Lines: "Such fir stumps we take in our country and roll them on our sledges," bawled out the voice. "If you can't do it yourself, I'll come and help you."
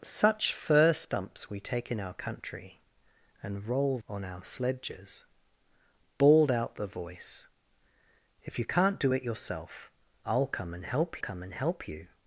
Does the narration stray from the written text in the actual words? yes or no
yes